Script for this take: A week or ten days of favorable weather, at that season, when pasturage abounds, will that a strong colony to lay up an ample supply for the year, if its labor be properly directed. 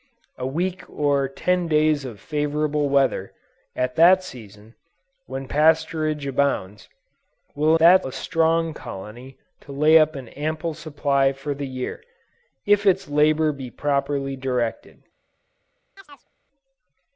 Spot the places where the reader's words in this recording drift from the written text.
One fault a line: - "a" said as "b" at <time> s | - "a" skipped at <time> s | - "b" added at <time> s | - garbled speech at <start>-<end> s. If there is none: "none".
none